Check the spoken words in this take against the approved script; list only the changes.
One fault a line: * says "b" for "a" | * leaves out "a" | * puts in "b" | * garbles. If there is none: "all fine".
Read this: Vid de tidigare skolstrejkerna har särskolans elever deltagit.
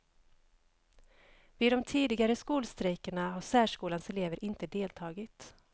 * puts in "inte"